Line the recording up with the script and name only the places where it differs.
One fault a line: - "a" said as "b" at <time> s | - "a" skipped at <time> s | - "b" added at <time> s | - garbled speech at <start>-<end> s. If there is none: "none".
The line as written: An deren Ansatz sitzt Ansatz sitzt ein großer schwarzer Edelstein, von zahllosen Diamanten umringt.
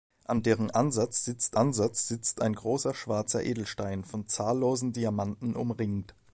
none